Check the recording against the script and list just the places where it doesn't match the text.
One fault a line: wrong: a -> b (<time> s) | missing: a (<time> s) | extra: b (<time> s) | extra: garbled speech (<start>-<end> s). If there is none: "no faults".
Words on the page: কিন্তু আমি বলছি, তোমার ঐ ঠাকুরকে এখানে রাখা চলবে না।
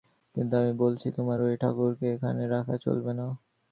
no faults